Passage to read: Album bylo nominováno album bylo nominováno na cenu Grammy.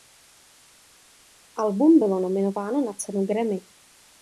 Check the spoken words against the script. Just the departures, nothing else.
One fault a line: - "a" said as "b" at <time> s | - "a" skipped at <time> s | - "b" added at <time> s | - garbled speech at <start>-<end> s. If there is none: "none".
- "album bylo nominováno" skipped at 2.8 s